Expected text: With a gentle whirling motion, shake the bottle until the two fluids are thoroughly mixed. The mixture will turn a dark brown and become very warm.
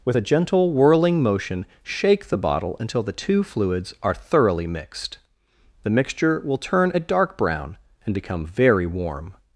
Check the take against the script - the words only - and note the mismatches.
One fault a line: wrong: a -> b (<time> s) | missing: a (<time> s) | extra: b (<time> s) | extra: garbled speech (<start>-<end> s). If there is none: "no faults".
no faults